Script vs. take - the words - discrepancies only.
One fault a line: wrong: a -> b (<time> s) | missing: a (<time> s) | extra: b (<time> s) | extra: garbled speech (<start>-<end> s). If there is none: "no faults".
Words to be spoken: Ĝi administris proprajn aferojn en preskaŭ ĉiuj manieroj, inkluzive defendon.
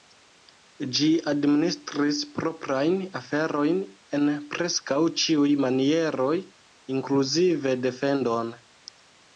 no faults